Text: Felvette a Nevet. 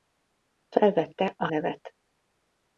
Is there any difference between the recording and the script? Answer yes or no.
no